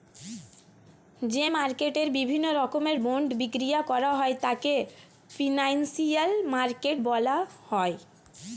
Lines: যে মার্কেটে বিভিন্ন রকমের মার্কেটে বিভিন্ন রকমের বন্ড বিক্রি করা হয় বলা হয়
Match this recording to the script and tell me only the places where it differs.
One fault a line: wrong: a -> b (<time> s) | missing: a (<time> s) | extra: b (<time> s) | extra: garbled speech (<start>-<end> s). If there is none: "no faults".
missing: মার্কেটে বিভিন্ন রকমের (3.0 s)
extra: তাকে ফিনান্সিয়াল মার্কেট (4.4 s)